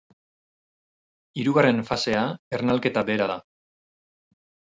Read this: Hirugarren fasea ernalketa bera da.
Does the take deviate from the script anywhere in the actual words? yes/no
no